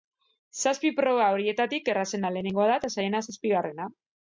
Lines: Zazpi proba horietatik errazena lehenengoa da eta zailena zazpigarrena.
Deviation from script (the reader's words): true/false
false